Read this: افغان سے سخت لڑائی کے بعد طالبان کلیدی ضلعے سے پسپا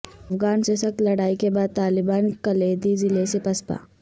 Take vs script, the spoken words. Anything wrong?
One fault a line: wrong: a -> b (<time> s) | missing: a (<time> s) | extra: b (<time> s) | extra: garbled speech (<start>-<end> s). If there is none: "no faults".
no faults